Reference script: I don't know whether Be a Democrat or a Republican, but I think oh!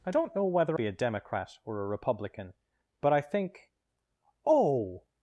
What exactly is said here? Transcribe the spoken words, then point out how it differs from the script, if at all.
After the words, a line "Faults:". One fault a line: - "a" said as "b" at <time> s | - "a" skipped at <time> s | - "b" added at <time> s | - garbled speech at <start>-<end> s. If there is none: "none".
I don't know whether Be a Democrat or a Republican, but I think oh!
Faults:
none